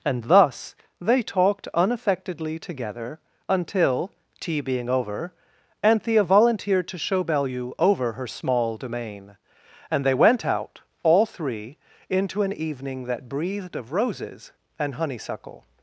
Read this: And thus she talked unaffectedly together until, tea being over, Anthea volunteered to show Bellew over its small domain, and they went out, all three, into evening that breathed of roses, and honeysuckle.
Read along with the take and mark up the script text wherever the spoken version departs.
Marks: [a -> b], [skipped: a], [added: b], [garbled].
And thus [she -> they] talked unaffectedly together until, tea being over, Anthea volunteered to show Bellew over [its -> her] small domain, and they went out, all three, into [added: an] evening that breathed of roses, and honeysuckle.